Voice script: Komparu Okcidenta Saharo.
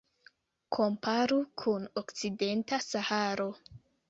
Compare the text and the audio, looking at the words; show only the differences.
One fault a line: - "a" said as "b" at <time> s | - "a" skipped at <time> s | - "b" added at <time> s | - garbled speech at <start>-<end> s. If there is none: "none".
- "kun" added at 1.6 s